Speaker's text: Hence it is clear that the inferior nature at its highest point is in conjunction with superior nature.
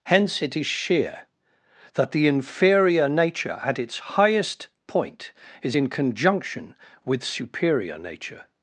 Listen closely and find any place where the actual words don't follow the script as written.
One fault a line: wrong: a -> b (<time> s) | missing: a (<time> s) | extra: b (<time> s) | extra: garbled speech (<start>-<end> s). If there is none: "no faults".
wrong: clear -> sheer (0.7 s)